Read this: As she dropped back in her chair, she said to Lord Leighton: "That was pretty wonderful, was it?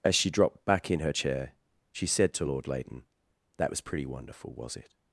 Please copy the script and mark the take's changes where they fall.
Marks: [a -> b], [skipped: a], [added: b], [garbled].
As she dropped back in her chair, she said to Lord Leighton: "That was pretty wonderful, was it?